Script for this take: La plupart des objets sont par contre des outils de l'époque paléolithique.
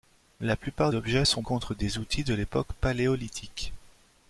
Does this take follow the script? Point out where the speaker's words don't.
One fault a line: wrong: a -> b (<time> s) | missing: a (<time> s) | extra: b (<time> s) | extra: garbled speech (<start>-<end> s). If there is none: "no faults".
missing: des (0.9 s)
missing: par (1.4 s)